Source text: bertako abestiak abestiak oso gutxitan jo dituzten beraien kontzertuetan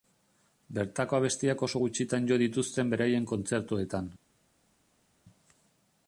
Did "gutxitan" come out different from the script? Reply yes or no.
no